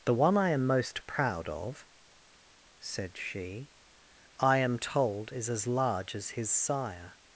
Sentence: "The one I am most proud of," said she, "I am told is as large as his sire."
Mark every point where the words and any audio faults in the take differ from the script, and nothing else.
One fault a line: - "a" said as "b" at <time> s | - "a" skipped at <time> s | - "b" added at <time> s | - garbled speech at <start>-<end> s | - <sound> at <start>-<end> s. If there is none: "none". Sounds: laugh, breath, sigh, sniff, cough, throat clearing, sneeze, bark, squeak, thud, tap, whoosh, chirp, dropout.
none